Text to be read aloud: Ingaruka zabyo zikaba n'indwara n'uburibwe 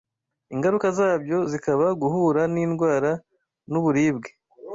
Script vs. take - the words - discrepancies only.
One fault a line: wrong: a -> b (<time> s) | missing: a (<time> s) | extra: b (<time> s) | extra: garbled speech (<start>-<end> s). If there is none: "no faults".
extra: guhura (2.0 s)